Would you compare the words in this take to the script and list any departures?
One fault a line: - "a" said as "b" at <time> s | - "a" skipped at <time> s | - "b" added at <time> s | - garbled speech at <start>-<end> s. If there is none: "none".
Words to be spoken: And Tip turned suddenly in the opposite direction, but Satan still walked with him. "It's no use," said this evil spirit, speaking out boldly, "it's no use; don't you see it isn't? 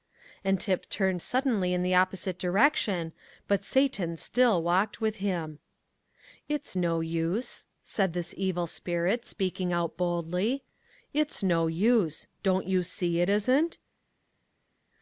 none